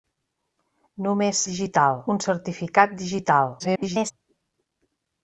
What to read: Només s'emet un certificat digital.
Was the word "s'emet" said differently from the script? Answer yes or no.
yes